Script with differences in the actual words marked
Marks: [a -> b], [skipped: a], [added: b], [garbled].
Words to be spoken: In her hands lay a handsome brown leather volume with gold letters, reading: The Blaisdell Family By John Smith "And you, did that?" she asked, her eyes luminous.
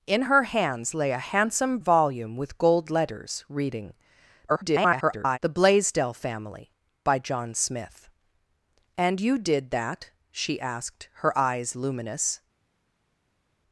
In her hands lay a handsome [skipped: brown leather] volume with gold letters, reading: [garbled] The Blaisdell Family By John Smith "And you, did that?" she asked, her eyes luminous.